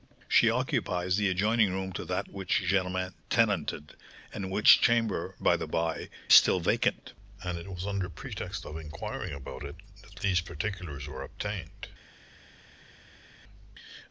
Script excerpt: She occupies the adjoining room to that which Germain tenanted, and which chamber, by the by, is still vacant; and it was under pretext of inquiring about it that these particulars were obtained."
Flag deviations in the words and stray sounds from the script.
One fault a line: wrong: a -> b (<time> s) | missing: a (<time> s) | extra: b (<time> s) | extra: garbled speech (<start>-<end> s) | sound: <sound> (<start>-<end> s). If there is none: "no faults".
missing: is (6.1 s)